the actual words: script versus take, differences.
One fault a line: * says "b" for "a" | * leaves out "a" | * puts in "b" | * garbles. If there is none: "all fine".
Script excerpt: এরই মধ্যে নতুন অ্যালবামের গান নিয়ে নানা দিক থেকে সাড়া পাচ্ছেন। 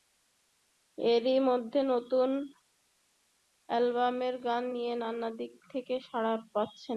all fine